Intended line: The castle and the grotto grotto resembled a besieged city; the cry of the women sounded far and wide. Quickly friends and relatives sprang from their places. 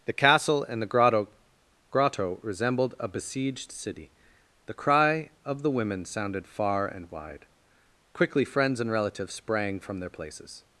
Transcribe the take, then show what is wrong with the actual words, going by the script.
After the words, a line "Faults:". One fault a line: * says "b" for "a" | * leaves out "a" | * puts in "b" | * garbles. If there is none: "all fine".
The castle and the grotto grotto resembled a besieged city; the cry of the women sounded far and wide. Quickly friends and relatives sprang from their places.
Faults:
all fine